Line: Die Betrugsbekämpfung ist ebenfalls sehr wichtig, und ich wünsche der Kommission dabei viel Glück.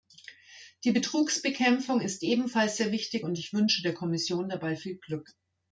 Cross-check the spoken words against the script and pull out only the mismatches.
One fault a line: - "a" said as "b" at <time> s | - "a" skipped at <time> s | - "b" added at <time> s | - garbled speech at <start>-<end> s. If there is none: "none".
none